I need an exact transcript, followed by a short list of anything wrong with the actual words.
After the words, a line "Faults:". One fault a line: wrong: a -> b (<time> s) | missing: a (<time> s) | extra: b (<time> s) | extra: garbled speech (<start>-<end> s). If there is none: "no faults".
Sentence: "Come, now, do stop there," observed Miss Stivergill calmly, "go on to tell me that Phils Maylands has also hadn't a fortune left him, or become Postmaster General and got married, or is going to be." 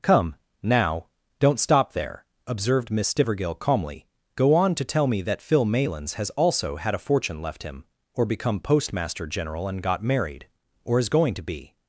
"Come, now, don't stop there," observed Miss Stivergill calmly, "go on to tell me that Phil Maylands has also had a fortune left him, or become Postmaster General and got married, or is going to be."
Faults:
wrong: do -> don't (1.4 s)
wrong: Phils -> Phil (5.4 s)
wrong: hadn't -> had (6.8 s)